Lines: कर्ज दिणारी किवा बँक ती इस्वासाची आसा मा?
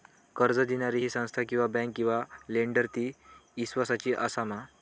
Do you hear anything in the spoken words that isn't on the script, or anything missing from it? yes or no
yes